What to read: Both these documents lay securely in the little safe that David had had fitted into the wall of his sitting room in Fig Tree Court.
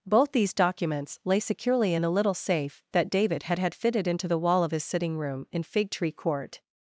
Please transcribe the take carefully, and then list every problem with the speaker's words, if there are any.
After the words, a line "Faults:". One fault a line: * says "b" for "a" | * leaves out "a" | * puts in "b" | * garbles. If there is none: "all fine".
Both these documents lay securely in the little safe that David had had fitted into the wall of his sitting room in Fig Tree Court.
Faults:
all fine